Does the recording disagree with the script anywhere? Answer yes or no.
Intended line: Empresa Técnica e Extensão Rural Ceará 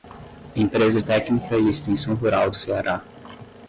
no